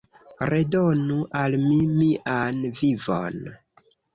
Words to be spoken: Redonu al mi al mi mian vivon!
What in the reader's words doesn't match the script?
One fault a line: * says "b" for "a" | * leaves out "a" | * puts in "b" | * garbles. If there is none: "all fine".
* leaves out "al mi"